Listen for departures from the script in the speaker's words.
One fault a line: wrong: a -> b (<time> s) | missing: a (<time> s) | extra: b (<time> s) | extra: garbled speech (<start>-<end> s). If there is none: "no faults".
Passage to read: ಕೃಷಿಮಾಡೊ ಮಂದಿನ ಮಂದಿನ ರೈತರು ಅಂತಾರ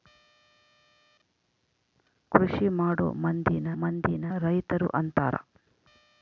no faults